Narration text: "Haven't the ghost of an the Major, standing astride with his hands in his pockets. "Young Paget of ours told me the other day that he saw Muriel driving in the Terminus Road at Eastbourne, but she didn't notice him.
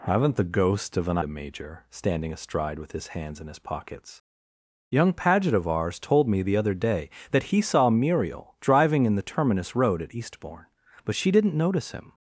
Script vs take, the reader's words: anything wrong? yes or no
no